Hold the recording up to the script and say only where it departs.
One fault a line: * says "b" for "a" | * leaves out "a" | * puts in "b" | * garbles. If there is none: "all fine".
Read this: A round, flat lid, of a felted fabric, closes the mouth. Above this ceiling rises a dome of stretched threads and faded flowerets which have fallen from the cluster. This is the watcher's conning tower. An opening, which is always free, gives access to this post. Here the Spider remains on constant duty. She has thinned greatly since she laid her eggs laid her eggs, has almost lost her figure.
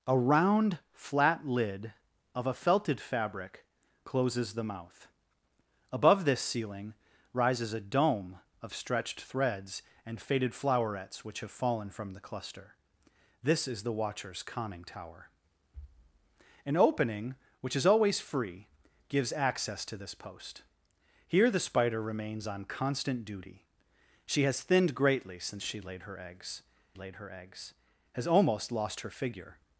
all fine